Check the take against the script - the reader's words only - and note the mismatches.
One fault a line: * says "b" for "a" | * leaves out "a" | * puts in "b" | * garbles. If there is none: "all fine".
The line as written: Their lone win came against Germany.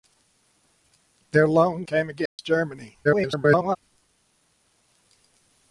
* leaves out "win"
* garbles